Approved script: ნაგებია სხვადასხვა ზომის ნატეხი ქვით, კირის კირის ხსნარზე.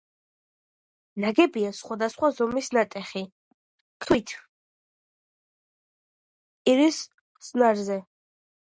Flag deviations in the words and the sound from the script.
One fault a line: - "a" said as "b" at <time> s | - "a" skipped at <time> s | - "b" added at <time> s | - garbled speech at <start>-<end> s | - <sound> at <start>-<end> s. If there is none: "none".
- "კირის" skipped at 7.0 s